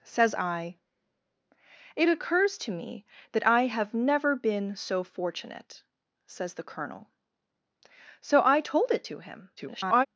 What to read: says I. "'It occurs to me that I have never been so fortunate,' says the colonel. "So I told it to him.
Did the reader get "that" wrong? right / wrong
right